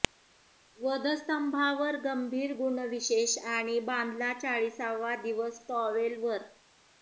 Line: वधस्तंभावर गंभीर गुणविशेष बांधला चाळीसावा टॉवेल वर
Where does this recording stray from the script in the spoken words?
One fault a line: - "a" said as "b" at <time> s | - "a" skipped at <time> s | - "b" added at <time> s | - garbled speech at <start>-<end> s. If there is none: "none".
- "आणि" added at 3.5 s
- "दिवस" added at 5.2 s